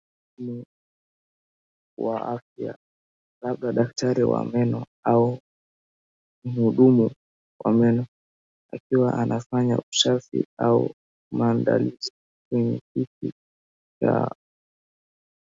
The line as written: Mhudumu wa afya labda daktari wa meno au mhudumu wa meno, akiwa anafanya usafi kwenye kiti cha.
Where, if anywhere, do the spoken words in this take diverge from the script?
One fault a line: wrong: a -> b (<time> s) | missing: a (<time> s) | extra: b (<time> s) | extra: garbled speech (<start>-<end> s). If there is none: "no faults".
extra: au maandalizi (10.6 s)